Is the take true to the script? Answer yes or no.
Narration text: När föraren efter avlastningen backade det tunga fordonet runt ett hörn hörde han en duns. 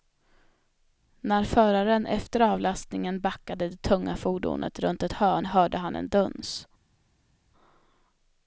yes